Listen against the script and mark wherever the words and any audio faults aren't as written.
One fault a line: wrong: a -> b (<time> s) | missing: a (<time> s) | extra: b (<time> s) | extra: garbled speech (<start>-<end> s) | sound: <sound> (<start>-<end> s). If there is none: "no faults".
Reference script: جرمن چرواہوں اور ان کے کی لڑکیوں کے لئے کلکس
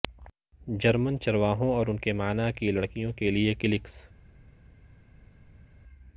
extra: معنی (2.1 s)